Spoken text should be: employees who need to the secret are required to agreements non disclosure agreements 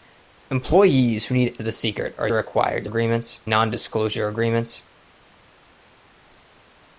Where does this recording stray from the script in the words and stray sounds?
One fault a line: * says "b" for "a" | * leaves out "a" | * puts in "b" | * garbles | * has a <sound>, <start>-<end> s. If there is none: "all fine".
all fine